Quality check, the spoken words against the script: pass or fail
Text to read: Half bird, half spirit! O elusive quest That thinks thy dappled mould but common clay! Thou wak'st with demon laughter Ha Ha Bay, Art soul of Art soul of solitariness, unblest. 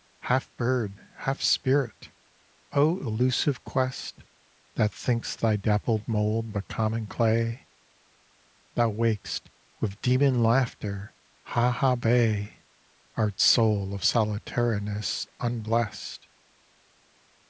fail